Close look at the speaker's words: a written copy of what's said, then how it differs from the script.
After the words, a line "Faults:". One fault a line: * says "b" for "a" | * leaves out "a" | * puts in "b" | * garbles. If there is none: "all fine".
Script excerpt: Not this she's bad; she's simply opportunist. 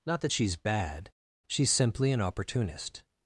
Not that she's bad; she's simply an opportunist.
Faults:
* says "that" for "this"
* puts in "an"